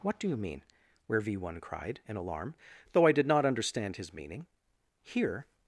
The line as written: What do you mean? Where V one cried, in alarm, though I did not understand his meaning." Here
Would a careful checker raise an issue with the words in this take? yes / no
no